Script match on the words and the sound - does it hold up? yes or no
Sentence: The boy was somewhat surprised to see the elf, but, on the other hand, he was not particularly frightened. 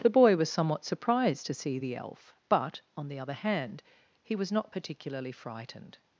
yes